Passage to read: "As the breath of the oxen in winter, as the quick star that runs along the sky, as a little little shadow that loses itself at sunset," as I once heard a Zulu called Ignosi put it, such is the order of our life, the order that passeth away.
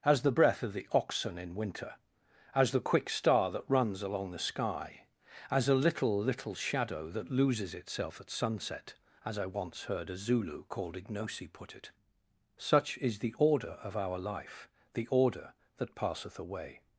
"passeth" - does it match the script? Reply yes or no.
yes